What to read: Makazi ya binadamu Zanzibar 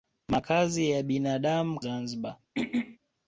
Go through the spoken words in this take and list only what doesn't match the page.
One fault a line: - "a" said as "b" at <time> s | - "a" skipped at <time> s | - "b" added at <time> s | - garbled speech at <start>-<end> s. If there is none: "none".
none